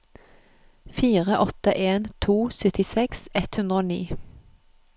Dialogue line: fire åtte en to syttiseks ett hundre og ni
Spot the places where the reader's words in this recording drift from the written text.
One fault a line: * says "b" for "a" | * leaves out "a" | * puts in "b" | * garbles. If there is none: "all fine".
all fine